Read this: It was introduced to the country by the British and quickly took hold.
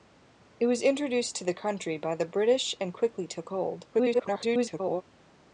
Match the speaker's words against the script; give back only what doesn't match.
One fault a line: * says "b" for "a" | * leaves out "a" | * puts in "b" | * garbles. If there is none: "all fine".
* garbles